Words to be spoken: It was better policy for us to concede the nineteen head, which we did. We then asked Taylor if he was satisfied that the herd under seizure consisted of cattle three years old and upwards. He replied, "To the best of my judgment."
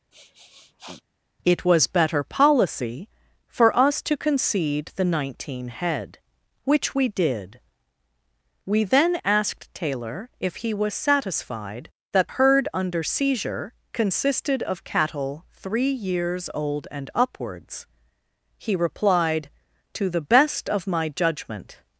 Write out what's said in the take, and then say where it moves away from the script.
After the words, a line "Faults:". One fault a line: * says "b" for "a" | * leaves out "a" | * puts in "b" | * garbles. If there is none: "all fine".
It was better policy for us to concede the nineteen head, which we did. We then asked Taylor if he was satisfied that herd under seizure consisted of cattle three years old and upwards. He replied, "To the best of my judgment."
Faults:
* leaves out "the"